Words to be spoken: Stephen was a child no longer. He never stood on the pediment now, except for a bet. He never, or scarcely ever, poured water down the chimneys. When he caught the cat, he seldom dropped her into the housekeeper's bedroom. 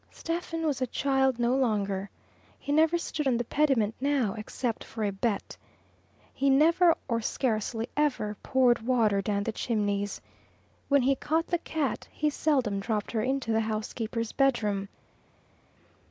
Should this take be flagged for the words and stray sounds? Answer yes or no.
no